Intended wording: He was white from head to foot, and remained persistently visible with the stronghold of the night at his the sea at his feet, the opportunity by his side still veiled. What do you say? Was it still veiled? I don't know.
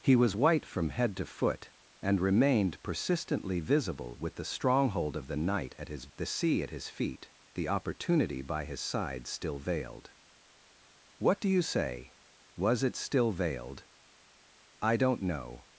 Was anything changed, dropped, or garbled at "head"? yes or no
no